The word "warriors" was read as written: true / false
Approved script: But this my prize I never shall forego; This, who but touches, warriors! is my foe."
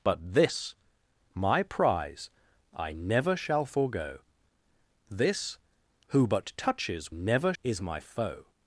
false